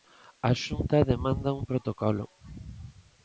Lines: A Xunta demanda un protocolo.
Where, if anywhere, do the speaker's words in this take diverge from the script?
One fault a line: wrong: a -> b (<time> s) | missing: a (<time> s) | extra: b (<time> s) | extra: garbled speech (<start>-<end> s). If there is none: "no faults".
no faults